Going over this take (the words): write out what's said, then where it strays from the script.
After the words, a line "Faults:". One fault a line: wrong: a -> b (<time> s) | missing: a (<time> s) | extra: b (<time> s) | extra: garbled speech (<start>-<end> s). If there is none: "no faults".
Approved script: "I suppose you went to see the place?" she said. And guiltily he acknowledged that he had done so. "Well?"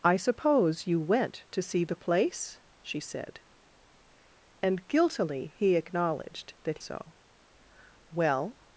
"I suppose you went to see the place?" she said. And guiltily he acknowledged that so. "Well?"
Faults:
missing: he had done (6.8 s)